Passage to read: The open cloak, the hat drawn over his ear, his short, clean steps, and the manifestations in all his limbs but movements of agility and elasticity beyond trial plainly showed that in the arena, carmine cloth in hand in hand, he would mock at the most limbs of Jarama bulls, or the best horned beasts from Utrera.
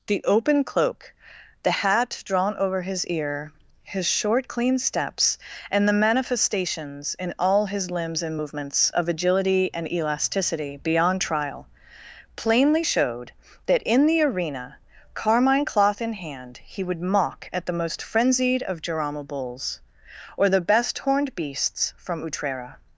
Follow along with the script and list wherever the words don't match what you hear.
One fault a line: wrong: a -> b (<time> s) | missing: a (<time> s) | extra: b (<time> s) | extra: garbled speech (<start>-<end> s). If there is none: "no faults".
wrong: but -> and (8.2 s)
missing: in hand (16.6 s)
wrong: limbs -> frenzied (18.0 s)